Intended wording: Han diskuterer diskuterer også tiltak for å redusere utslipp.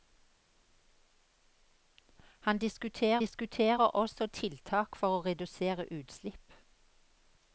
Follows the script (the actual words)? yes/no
yes